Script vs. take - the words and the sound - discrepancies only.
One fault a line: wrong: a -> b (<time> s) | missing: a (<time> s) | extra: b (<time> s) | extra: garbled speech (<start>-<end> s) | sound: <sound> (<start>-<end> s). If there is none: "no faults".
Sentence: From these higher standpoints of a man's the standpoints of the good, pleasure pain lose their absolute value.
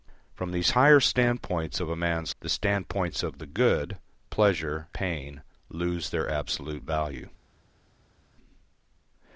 no faults